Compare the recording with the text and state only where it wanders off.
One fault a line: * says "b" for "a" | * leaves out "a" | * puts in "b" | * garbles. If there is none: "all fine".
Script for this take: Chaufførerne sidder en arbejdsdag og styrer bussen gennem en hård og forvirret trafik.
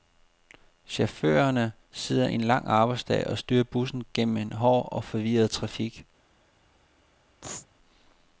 * puts in "lang"